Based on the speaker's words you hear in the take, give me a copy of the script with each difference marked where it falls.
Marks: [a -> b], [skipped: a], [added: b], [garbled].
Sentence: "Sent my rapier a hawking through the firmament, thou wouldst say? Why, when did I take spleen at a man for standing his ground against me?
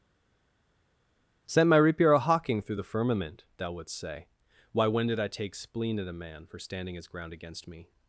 "Sent my rapier a hawking through the firmament, thou wouldst say? Why, when did I take spleen at a man for standing his ground against me?